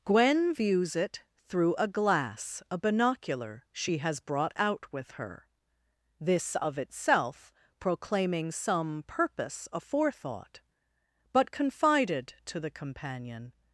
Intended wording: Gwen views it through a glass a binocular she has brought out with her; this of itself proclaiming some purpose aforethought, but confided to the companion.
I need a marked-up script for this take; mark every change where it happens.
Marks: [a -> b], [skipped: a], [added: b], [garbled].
Gwen views it through a glass a binocular she has brought out with her; this of itself proclaiming some purpose aforethought, but confided to the companion.